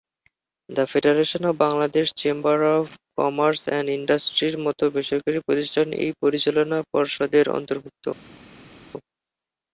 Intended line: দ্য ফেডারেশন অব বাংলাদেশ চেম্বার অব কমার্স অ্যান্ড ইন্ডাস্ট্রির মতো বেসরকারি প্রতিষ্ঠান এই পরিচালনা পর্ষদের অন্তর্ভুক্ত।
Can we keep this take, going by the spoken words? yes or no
yes